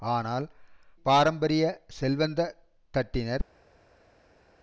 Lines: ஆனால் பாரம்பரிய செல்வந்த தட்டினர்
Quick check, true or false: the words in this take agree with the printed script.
true